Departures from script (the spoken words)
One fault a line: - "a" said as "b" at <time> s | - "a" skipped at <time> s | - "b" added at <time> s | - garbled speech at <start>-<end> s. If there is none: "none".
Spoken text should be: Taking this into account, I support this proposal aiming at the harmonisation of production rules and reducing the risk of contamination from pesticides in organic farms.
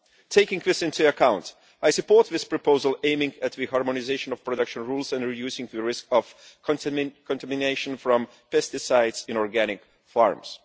none